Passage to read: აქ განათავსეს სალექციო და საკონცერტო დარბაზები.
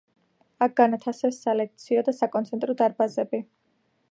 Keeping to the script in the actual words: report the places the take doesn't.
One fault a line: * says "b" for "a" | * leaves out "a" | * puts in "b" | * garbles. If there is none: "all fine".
all fine